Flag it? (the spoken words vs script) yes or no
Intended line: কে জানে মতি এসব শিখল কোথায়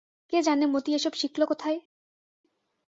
no